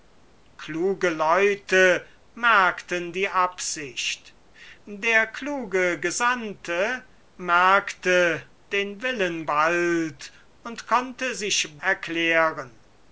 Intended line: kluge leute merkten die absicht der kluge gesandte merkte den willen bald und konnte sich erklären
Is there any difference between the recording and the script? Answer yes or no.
no